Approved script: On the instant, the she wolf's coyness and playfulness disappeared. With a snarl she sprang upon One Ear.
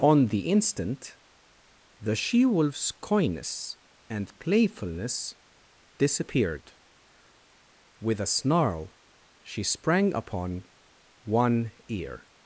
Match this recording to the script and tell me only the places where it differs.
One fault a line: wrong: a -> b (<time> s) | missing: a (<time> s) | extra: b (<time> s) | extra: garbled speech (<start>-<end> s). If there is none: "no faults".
no faults